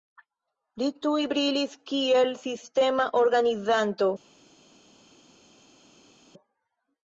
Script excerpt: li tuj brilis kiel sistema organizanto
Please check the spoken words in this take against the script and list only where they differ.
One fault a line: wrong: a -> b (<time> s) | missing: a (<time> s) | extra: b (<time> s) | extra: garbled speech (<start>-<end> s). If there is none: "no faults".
no faults